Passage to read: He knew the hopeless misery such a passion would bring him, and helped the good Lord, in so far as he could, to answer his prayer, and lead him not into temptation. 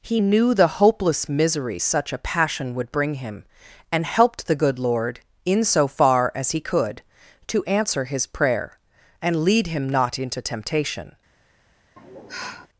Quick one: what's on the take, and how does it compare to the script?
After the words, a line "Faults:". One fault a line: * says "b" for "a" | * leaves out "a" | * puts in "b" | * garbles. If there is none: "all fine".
He knew the hopeless misery such a passion would bring him, and helped the good Lord, in so far as he could, to answer his prayer, and lead him not into temptation.
Faults:
all fine